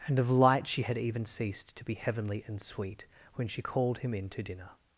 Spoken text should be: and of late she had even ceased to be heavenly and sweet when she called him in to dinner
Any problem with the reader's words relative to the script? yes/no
yes